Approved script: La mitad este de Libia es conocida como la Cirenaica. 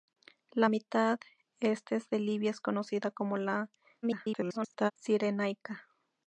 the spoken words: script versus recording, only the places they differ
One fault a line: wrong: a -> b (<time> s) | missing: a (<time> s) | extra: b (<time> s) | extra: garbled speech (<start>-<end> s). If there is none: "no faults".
extra: garbled speech (4.0-4.9 s)